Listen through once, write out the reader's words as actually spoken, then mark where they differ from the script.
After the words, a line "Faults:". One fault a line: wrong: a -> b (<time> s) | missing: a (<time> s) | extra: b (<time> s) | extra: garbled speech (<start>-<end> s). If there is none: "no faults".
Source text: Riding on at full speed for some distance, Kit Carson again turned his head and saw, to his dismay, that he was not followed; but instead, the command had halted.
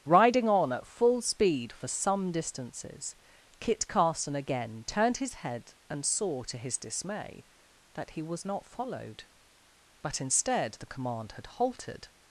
Riding on at full speed for some distances, Kit Carson again turned his head and saw, to his dismay, that he was not followed; but instead, the command had halted.
Faults:
wrong: distance -> distances (2.3 s)